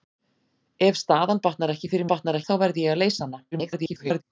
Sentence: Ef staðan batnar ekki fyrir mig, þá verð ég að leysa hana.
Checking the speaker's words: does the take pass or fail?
fail